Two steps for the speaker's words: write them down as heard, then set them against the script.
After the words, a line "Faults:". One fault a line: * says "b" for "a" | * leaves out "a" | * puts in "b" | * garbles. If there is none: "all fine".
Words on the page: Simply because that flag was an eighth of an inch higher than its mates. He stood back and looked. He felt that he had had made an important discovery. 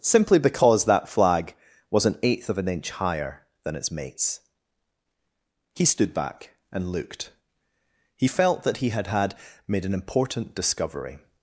Simply because that flag was an eighth of an inch higher than its mates. He stood back and looked. He felt that he had had made an important discovery.
Faults:
all fine